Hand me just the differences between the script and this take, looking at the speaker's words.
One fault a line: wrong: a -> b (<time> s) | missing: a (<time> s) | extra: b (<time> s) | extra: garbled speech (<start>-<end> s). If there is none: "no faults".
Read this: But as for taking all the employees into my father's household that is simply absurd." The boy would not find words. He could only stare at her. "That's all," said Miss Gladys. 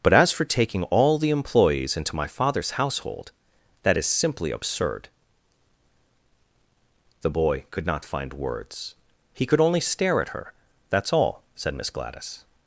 wrong: would -> could (7.7 s)